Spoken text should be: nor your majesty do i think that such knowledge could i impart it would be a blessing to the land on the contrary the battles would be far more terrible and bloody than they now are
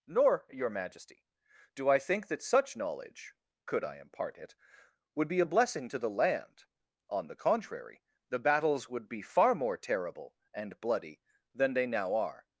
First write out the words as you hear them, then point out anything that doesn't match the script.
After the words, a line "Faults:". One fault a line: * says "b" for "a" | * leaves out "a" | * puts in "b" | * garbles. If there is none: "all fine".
nor your majesty do i think that such knowledge could i impart it would be a blessing to the land on the contrary the battles would be far more terrible and bloody than they now are
Faults:
all fine